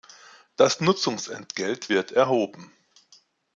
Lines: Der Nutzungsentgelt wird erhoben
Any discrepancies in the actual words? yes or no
yes